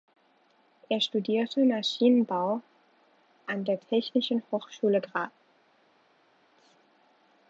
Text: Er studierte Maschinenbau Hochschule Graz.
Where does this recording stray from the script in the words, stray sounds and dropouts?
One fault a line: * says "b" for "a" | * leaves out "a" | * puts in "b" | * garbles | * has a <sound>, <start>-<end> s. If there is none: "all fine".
* puts in "an der Technischen"